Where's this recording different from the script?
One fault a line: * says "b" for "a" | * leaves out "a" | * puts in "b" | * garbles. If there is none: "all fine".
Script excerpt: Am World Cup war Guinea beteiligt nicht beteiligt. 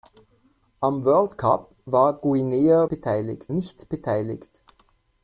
all fine